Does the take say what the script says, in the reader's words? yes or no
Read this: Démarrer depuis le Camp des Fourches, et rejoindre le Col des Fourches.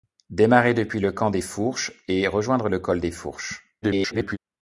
no